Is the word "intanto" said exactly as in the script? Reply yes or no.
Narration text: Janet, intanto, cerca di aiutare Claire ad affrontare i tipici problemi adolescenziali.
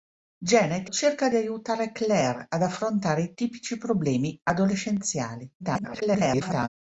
no